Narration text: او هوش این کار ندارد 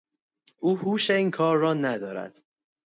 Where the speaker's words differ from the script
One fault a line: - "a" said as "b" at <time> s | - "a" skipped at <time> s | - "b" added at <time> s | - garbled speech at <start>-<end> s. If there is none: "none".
- "را" added at 1.6 s